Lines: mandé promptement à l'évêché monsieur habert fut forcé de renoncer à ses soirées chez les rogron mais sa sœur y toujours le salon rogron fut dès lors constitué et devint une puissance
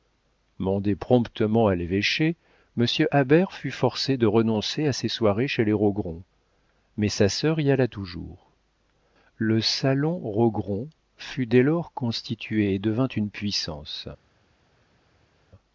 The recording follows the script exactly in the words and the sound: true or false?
false